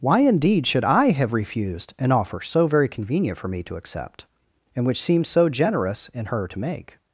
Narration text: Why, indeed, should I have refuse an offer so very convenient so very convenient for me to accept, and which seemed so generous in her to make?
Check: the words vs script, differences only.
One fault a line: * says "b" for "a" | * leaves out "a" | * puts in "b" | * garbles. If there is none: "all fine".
* says "refused" for "refuse"
* leaves out "so very convenient"